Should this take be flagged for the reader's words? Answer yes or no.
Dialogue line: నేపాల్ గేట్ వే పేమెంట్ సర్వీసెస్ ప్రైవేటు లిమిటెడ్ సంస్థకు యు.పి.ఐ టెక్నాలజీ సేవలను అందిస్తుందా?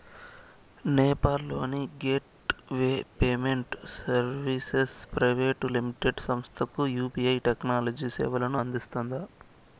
yes